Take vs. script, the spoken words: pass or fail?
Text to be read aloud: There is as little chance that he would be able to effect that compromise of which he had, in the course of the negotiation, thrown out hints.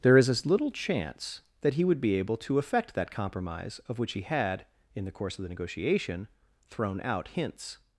pass